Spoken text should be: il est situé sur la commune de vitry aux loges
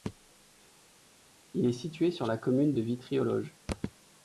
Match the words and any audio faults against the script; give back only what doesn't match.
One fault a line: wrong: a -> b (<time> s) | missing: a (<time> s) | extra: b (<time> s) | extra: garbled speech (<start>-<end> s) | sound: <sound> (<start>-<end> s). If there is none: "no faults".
no faults